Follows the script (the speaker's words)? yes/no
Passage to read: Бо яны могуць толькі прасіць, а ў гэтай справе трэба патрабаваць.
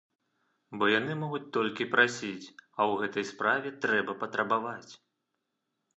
yes